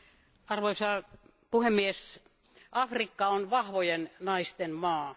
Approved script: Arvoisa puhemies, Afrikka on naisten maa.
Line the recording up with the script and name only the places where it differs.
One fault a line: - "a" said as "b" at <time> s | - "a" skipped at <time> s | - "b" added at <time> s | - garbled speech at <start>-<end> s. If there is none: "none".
- "vahvojen" added at 3.5 s